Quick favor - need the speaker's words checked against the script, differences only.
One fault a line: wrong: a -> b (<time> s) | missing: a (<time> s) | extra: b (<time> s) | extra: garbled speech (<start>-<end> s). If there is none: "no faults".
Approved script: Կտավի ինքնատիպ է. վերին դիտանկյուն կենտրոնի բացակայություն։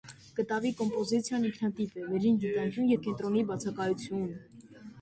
extra: կոմպոզիցիան (0.8 s)
extra: և (2.9 s)